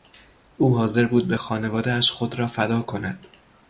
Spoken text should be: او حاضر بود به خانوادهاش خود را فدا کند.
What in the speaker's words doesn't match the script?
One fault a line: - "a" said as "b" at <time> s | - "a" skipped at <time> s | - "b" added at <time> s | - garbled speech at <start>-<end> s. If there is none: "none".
none